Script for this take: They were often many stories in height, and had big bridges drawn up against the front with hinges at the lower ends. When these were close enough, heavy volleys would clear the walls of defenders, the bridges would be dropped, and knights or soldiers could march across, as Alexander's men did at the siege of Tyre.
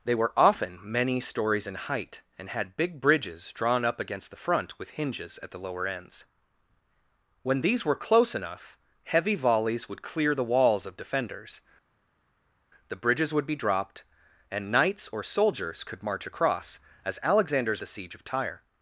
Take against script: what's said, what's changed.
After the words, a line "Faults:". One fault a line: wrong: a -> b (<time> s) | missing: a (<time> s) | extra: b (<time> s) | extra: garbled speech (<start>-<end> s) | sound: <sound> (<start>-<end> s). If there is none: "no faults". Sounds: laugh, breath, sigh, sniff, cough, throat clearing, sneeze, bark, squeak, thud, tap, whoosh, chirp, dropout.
They were often many stories in height, and had big bridges drawn up against the front with hinges at the lower ends. When these were close enough, heavy volleys would clear the walls of defenders, the bridges would be dropped, and knights or soldiers could march across, as Alexander's the siege of Tyre.
Faults:
missing: men did at (17.8 s)